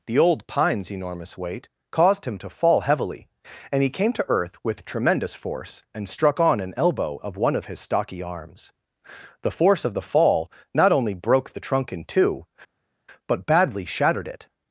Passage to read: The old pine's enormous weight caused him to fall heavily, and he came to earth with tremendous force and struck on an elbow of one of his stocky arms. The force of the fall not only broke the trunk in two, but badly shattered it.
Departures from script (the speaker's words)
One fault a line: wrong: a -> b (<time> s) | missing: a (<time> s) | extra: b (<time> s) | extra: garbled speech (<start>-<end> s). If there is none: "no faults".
no faults